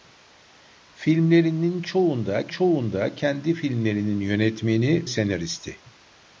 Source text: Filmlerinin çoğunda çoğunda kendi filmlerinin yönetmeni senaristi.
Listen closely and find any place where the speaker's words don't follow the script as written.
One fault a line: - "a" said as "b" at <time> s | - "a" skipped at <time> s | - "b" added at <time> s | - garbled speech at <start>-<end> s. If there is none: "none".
none